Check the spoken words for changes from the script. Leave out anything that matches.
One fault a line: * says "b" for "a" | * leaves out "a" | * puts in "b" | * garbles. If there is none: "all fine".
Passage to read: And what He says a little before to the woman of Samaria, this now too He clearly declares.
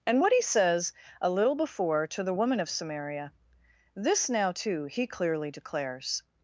all fine